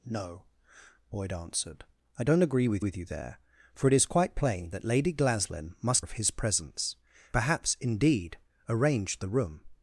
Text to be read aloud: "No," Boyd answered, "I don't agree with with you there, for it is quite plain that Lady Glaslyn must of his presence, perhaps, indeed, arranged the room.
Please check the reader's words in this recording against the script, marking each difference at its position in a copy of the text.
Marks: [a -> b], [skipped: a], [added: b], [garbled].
"No," Boyd answered, "I don't agree with with you there, for it is quite plain that Lady Glaslyn must of his presence, perhaps, indeed, arranged the room.